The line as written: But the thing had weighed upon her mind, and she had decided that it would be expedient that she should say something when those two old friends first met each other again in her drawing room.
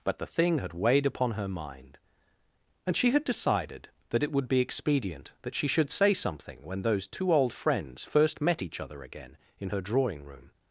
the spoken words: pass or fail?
pass